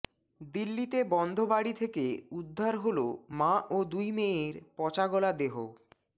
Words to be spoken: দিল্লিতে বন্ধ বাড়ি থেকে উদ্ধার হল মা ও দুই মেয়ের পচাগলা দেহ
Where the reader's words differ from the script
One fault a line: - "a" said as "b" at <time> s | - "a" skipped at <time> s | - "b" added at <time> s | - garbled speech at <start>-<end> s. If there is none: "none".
none